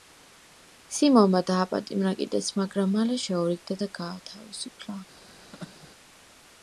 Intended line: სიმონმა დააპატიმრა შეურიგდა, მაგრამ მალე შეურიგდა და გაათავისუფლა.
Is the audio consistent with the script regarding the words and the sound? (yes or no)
no